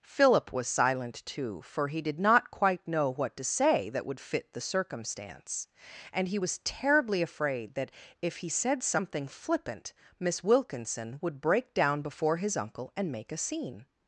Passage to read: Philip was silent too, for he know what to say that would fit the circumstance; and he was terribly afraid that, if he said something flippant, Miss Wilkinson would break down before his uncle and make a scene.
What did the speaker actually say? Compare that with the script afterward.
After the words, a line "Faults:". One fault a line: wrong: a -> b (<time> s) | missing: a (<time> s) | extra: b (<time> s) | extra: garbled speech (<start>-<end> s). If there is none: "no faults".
Philip was silent too, for he did not quite know what to say that would fit the circumstance; and he was terribly afraid that, if he said something flippant, Miss Wilkinson would break down before his uncle and make a scene.
Faults:
extra: did not quite (2.0 s)